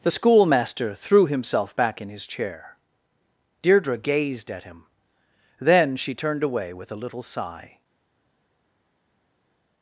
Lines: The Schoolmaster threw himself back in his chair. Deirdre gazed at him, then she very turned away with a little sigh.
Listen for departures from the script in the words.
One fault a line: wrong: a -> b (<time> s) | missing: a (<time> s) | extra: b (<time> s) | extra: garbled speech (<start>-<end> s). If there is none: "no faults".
missing: very (6.1 s)